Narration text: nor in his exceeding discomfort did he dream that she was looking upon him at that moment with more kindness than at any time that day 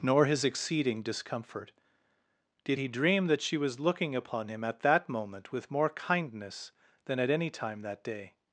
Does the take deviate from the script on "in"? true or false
true